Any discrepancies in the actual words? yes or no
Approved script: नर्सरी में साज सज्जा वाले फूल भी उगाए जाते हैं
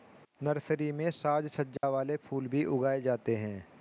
no